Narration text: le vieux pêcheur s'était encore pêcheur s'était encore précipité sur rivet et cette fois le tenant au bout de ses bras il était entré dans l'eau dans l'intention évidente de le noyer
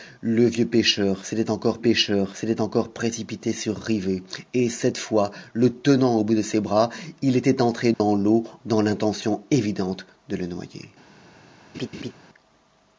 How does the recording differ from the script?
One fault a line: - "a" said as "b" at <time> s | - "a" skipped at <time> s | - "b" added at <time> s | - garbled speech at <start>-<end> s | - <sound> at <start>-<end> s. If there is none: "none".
- dropout at 7.9-8.0 s
- laugh at 11.7-12.1 s